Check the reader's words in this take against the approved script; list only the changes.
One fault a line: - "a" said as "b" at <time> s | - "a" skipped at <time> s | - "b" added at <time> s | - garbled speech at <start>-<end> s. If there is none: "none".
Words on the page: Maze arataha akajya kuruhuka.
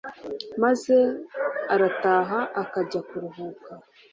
none